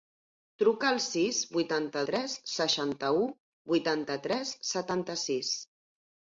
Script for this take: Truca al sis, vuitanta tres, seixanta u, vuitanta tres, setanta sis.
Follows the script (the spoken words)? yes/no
yes